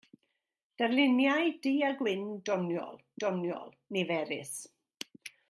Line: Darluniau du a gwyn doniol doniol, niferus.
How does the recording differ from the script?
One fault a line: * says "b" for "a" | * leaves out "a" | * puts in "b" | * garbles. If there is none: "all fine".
all fine